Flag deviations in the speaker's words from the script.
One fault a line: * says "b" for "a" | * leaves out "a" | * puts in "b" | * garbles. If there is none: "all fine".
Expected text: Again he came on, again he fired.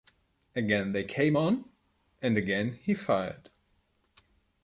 * says "they" for "he"
* puts in "and"